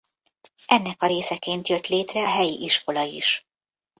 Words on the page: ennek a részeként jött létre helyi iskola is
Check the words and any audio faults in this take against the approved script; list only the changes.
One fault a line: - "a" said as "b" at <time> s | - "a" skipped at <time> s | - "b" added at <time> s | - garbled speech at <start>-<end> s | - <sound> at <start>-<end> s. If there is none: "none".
none